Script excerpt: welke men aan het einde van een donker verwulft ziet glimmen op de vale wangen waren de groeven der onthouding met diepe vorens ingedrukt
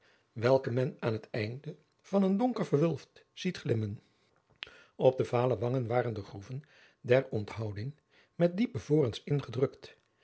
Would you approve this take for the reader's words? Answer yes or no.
yes